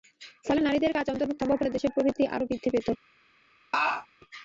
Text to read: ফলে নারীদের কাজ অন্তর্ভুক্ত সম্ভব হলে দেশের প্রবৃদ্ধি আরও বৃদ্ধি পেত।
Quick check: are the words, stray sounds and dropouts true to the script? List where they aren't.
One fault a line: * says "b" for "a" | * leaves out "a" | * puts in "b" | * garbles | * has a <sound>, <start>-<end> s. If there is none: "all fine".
* has a laugh, 3.7-4.1 s